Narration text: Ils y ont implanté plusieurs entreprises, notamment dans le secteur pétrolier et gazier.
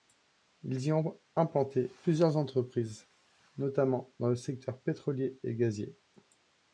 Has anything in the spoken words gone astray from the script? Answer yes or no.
no